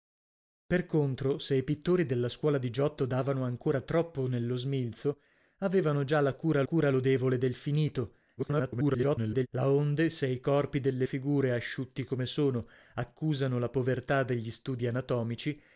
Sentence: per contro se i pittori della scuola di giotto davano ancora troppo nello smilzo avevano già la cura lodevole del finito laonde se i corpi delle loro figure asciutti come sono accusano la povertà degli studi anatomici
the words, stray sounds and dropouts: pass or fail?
fail